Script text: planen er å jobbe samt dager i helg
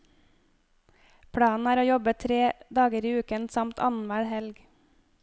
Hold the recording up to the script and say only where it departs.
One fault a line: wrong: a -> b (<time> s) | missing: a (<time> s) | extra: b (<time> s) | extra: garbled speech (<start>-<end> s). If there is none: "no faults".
wrong: samt -> tre (2.2 s)
extra: uken samt annenhver (3.2 s)